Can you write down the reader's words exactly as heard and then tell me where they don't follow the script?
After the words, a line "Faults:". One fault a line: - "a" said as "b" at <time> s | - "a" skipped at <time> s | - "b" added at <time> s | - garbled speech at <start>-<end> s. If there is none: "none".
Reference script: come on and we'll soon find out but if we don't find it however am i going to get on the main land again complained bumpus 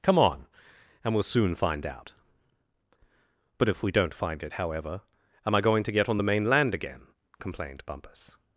come on and we'll soon find out but if we don't find it however am i going to get on the main land again complained bumpus
Faults:
none